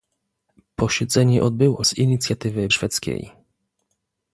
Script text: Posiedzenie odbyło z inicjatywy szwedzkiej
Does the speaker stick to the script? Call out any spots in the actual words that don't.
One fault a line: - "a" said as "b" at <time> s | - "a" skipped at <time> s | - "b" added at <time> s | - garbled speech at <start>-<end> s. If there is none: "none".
none